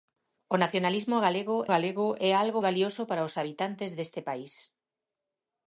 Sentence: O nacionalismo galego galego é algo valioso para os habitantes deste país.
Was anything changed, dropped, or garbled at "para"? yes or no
no